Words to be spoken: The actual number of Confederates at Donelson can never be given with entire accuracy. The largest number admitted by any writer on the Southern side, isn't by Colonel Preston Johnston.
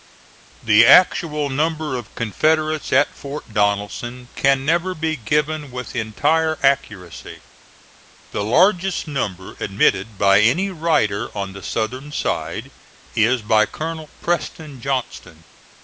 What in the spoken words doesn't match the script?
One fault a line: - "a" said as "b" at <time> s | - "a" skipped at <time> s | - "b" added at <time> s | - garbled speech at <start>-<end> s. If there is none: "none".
- "Fort" added at 3.1 s
- "isn't" said as "is" at 13.1 s